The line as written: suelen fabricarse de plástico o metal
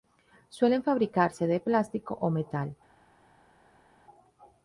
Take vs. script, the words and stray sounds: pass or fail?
pass